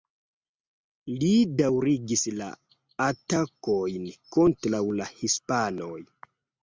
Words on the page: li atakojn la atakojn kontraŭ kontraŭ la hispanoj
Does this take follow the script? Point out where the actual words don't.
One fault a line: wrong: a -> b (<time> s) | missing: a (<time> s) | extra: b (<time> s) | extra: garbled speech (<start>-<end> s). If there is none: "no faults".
wrong: atakojn -> daŭrigis (1.6 s)
missing: kontraŭ (4.8 s)